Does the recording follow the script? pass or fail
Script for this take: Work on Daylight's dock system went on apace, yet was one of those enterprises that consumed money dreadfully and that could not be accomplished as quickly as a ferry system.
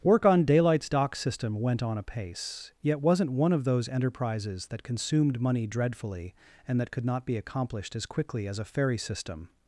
fail